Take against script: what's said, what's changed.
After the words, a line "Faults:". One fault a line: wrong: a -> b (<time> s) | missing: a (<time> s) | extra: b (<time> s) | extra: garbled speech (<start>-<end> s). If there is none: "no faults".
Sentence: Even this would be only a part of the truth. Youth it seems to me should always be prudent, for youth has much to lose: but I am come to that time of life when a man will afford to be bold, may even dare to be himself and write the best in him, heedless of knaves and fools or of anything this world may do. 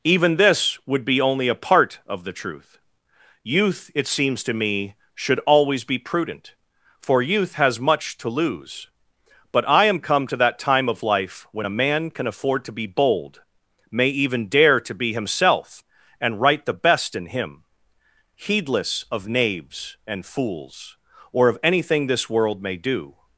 Even this would be only a part of the truth. Youth it seems to me should always be prudent, for youth has much to lose: but I am come to that time of life when a man can afford to be bold, may even dare to be himself and write the best in him, heedless of knaves and fools or of anything this world may do.
Faults:
wrong: will -> can (12.1 s)